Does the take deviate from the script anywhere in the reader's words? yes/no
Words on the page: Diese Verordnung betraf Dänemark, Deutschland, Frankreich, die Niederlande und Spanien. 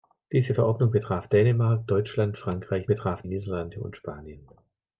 yes